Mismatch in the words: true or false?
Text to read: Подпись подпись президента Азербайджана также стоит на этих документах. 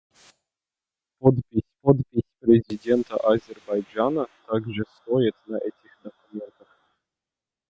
false